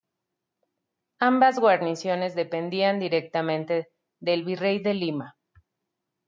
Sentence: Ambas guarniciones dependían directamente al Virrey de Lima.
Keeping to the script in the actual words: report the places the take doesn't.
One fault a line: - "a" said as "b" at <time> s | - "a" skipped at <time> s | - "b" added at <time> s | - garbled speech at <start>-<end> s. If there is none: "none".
- "al" said as "del" at 4.2 s